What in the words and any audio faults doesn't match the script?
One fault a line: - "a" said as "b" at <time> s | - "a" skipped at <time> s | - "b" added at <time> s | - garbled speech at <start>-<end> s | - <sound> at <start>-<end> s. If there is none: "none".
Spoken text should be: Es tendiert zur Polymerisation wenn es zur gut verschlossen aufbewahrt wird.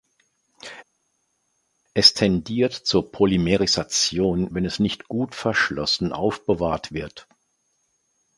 - "zur" said as "nicht" at 4.8 s